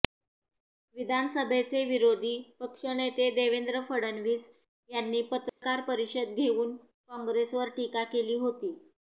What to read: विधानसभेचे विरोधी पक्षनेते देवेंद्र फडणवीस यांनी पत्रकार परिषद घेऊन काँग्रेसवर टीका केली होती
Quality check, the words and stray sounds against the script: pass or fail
fail